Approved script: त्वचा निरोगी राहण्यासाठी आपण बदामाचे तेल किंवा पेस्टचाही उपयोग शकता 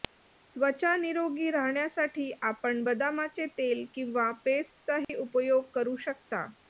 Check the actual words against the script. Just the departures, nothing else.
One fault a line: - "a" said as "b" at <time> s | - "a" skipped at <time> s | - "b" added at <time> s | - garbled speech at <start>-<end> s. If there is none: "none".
- "करू" added at 5.7 s